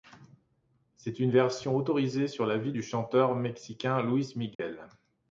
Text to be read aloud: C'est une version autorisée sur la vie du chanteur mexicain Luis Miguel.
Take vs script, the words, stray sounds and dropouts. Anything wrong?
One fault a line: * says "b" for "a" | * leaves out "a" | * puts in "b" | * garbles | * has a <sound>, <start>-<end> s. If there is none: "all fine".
* has a dropout, 4.5-4.6 s